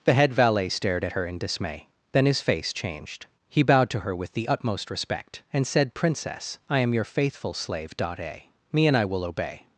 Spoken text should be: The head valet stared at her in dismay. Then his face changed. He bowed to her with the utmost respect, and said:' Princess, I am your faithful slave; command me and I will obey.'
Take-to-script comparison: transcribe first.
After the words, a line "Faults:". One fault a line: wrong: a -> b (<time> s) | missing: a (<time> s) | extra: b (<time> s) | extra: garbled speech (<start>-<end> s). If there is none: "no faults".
The head valet stared at her in dismay. Then his face changed. He bowed to her with the utmost respect, and said:' Princess, I am your faithful slave; dot a me and I will obey.'
Faults:
wrong: command -> dot a (8.0 s)